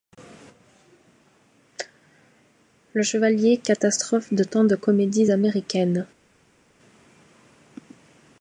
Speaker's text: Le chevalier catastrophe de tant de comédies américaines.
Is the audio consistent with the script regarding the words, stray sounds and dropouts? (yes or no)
yes